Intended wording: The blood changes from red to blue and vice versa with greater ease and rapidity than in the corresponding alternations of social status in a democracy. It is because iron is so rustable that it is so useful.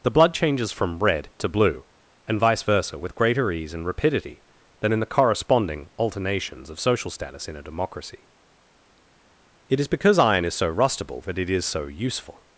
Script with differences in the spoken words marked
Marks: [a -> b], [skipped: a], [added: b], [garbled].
The blood changes from red to blue and vice versa with greater ease and rapidity than in the corresponding alternations of social status in a democracy. It is because iron is so rustable that it is so useful.